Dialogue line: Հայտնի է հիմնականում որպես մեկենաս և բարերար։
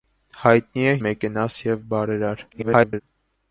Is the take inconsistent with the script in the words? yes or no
yes